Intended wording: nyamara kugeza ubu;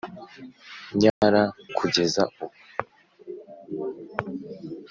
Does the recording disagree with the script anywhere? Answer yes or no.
no